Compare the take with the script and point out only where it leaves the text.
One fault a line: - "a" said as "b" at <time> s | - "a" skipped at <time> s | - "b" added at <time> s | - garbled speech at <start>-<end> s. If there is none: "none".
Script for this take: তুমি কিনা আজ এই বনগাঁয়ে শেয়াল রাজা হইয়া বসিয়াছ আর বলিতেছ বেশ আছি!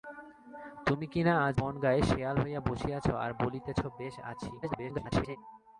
- "এই" skipped at 1.6 s
- "রাজা" skipped at 2.4 s
- garbled speech at 4.6-5.4 s